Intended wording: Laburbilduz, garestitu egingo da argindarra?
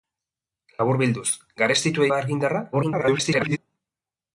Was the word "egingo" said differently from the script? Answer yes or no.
yes